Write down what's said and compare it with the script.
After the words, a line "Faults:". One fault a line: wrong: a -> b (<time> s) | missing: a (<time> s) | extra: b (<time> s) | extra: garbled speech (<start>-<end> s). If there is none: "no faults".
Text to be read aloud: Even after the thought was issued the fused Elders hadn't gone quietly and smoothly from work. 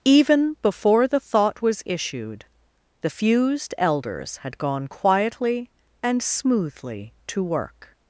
Even before the thought was issued the fused Elders had gone quietly and smoothly to work.
Faults:
wrong: after -> before (0.6 s)
wrong: hadn't -> had (4.4 s)
wrong: from -> to (7.3 s)